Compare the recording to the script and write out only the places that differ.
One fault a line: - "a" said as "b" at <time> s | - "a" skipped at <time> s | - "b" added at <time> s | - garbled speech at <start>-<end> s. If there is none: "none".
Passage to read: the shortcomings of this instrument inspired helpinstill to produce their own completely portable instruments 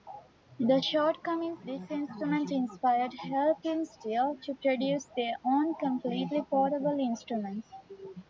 - "of" skipped at 1.6 s